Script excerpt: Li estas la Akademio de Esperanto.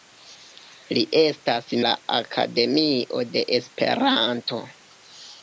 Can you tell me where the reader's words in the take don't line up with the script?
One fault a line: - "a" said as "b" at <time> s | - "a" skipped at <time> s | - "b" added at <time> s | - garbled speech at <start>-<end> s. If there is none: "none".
none